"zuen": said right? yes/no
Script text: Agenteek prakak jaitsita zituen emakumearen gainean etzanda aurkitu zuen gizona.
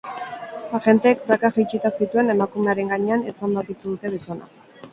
no